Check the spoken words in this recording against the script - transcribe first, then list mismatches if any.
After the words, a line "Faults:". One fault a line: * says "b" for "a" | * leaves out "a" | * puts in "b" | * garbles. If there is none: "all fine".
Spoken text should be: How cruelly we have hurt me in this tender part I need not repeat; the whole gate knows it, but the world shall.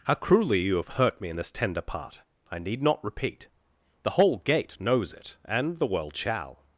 How cruelly you have hurt me in this tender part I need not repeat; the whole gate knows it, and the world shall.
Faults:
* says "you" for "we"
* says "and" for "but"